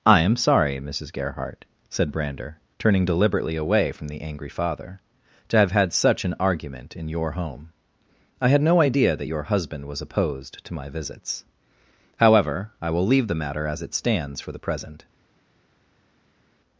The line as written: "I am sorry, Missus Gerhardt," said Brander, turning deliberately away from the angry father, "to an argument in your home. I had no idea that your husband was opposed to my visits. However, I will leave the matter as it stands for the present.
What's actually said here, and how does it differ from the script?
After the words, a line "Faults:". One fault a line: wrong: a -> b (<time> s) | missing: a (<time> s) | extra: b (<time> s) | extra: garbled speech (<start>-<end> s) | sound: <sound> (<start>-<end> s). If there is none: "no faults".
"I am sorry, Missus Gerhardt," said Brander, turning deliberately away from the angry father, "to have had such an argument in your home. I had no idea that your husband was opposed to my visits. However, I will leave the matter as it stands for the present.
Faults:
extra: have had such (5.6 s)